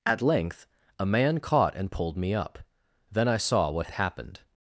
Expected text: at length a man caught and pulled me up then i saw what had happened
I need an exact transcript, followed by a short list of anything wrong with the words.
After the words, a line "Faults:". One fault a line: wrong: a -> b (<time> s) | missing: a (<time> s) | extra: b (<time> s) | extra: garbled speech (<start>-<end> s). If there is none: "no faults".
at length a man caught and pulled me up then i saw what happened
Faults:
missing: had (3.9 s)